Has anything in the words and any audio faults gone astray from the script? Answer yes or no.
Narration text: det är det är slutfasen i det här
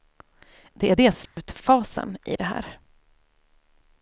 yes